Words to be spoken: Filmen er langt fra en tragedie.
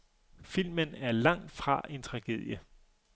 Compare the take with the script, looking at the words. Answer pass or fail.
pass